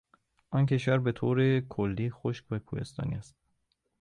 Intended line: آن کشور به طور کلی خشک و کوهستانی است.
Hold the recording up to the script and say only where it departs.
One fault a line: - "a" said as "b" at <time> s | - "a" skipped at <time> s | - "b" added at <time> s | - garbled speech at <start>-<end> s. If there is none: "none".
none